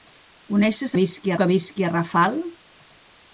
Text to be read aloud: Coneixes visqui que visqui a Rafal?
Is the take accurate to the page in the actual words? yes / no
yes